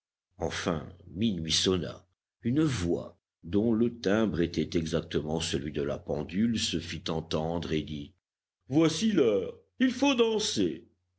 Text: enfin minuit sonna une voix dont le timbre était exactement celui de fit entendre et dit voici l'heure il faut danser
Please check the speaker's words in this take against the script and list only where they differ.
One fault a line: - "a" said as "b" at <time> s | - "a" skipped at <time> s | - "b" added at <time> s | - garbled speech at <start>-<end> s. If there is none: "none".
- "la pendule se" added at 5.8 s